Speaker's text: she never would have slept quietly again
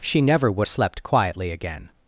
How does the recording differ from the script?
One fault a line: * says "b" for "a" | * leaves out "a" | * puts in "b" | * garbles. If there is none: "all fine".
* leaves out "have"